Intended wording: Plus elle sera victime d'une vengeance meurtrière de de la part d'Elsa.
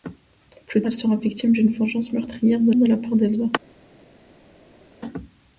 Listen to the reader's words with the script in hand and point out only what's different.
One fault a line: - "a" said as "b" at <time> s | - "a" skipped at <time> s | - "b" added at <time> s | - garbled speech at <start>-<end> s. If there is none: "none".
none